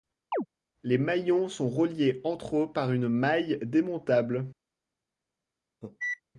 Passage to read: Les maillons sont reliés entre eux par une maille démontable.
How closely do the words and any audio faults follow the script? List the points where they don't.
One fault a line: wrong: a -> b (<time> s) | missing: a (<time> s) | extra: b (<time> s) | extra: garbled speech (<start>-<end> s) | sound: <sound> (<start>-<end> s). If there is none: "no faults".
sound: chirp (0.3-0.5 s)
sound: cough (5.8-6.2 s)